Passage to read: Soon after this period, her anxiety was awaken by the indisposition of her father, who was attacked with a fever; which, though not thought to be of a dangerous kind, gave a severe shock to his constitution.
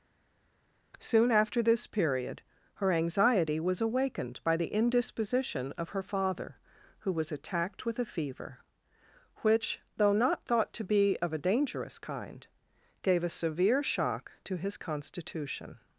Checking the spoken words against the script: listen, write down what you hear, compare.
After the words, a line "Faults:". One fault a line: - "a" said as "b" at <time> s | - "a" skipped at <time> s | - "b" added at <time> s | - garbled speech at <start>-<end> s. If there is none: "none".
Soon after this period, her anxiety was awakened by the indisposition of her father, who was attacked with a fever; which, though not thought to be of a dangerous kind, gave a severe shock to his constitution.
Faults:
- "awaken" said as "awakened" at 3.8 s